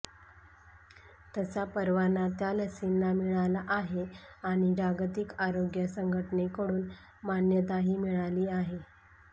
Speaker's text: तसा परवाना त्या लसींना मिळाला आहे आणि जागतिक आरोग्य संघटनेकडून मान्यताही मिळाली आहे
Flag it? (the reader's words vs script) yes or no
no